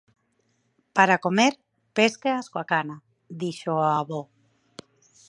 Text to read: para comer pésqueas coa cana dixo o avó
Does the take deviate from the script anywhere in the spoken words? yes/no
no